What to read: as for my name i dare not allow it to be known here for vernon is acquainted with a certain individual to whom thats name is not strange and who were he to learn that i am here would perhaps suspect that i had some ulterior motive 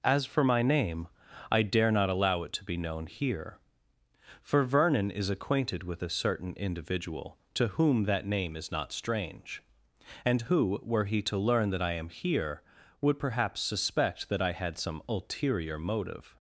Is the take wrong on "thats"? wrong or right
wrong